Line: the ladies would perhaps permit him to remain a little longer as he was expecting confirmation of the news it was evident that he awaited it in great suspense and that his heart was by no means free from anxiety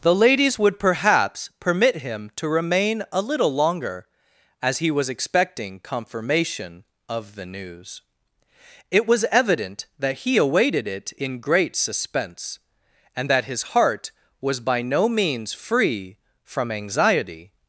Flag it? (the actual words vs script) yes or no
no